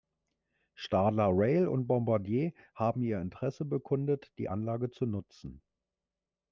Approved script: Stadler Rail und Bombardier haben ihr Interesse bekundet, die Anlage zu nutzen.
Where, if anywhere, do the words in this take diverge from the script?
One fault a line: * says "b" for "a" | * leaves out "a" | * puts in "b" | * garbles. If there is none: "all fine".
all fine